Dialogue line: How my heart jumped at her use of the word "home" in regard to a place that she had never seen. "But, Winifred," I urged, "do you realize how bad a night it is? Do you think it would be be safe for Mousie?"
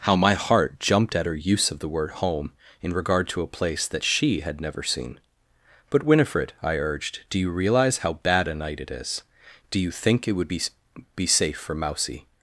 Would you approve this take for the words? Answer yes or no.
yes